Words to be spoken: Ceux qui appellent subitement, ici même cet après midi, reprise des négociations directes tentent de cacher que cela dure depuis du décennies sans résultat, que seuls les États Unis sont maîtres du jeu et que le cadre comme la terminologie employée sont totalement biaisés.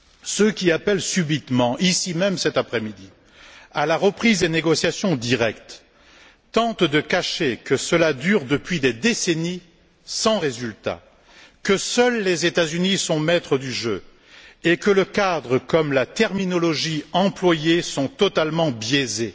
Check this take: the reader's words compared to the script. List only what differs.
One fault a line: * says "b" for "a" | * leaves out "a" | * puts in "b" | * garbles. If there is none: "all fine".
* puts in "à la"
* says "des" for "du"